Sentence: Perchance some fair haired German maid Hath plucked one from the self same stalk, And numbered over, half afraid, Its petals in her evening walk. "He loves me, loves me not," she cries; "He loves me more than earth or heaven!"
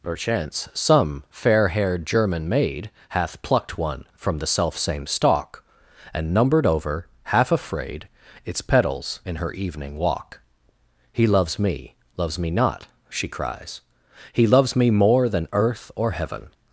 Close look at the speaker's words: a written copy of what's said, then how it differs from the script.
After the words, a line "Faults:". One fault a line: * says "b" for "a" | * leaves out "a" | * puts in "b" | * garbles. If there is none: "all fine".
Perchance some fair haired German maid Hath plucked one from the self same stalk, And numbered over, half afraid, Its petals in her evening walk. "He loves me, loves me not," she cries; "He loves me more than earth or heaven!"
Faults:
all fine